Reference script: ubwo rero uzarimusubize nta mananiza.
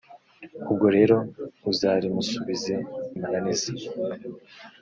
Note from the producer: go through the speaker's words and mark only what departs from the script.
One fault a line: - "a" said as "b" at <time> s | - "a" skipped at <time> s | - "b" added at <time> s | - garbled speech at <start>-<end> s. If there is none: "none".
- "nta" skipped at 2.8 s